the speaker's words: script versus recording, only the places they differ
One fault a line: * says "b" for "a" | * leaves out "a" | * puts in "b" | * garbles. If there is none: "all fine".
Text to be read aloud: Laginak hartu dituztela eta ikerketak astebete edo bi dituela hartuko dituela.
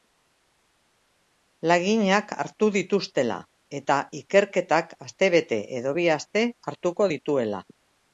* says "aste" for "dituela"